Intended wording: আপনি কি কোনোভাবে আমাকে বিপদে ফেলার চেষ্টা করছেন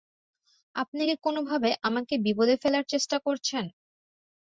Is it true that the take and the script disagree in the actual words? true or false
false